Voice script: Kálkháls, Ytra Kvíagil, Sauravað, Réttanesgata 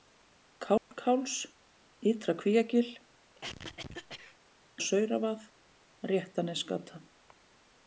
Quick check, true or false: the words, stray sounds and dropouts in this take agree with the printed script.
false